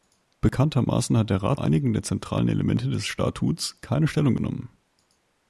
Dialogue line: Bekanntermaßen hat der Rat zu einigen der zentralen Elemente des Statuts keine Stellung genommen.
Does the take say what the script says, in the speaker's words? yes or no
no